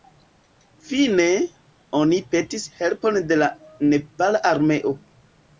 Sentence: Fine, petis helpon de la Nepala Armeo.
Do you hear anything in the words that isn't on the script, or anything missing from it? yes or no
yes